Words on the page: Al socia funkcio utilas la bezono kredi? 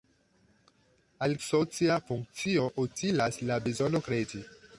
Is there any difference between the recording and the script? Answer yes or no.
no